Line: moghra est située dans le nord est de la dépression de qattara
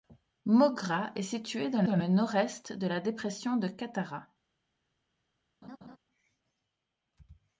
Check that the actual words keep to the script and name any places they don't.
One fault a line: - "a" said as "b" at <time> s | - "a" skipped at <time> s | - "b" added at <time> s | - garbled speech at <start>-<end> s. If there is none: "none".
- "dans" added at 1.8 s